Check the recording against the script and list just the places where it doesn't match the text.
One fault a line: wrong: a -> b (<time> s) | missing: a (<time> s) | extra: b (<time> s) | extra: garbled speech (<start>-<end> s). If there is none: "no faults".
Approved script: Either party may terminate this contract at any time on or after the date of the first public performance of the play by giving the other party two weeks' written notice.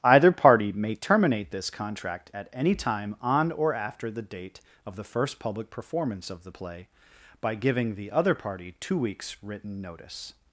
no faults